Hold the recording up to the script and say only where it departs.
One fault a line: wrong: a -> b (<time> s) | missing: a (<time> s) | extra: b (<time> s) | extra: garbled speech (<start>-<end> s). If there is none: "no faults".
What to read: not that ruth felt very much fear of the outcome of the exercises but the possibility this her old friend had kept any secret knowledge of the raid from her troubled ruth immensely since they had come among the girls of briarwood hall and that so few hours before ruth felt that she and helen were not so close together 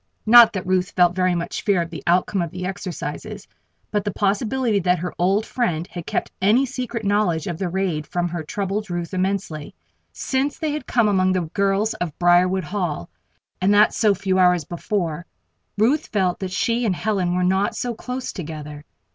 wrong: this -> that (4.8 s)